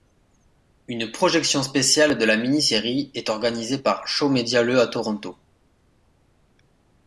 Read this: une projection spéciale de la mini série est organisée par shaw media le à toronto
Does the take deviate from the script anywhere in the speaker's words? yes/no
no